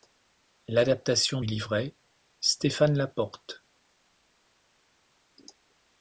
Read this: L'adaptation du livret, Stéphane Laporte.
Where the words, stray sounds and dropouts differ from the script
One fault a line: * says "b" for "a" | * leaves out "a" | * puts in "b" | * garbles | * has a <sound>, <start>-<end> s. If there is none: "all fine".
* leaves out "du"